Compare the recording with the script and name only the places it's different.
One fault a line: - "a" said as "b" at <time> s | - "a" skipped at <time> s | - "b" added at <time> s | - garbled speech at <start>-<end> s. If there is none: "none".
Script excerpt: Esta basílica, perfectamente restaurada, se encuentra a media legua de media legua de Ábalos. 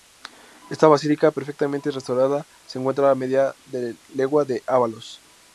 - "media legua de" skipped at 4.6 s